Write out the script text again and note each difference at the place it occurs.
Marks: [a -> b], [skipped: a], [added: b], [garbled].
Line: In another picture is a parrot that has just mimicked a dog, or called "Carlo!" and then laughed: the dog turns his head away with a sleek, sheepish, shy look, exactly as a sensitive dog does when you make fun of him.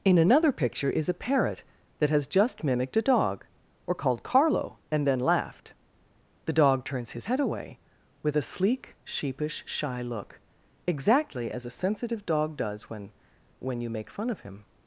In another picture is a parrot that has just mimicked a dog, or called "Carlo!" and then laughed: the dog turns his head away with a sleek, sheepish, shy look, exactly as a sensitive dog does when [added: when] you make fun of him.